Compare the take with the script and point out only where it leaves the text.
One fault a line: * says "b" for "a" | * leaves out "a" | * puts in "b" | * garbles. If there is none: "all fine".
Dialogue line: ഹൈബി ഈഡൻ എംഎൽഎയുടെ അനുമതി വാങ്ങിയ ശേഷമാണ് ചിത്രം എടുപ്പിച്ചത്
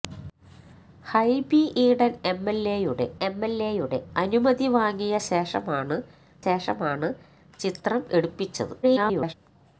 * puts in "എംഎൽഎയുടെ"
* puts in "ശേഷമാണ്"
* garbles